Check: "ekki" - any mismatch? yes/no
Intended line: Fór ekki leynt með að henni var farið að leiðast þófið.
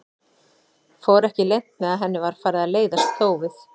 no